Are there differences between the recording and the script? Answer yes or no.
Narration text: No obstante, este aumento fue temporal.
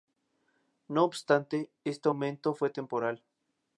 no